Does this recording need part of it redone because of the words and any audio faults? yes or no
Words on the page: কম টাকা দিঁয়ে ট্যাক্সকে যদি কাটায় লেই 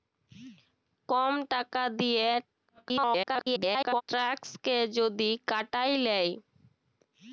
yes